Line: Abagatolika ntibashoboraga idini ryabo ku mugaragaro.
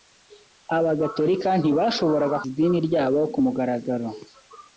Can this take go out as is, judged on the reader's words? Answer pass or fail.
pass